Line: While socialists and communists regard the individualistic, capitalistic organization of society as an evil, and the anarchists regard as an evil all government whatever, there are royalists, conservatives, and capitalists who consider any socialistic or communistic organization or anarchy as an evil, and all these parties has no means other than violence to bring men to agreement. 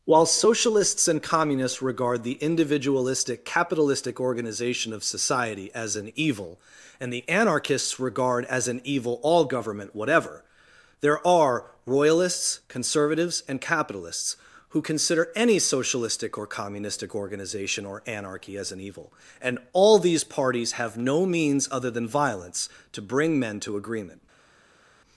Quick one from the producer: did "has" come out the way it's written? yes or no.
no